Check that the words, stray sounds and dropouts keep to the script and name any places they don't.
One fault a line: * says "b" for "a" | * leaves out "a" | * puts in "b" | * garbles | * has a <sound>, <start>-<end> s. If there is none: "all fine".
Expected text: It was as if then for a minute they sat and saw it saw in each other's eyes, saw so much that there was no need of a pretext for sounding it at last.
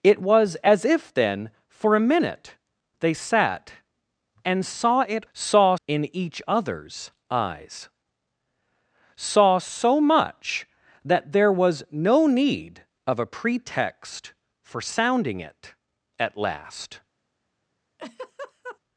* has a laugh, 18.0-18.8 s